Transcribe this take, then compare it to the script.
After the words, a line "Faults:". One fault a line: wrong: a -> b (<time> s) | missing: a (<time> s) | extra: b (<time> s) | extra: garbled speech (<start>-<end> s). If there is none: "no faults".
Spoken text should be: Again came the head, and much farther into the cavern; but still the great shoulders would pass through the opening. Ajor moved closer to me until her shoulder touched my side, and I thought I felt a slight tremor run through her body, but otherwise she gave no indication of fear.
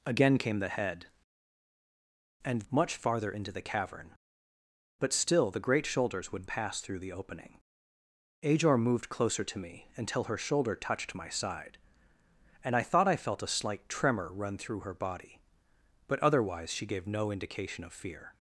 Again came the head, and much farther into the cavern; but still the great shoulders would pass through the opening. Ajor moved closer to me until her shoulder touched my side, and I thought I felt a slight tremor run through her body, but otherwise she gave no indication of fear.
Faults:
no faults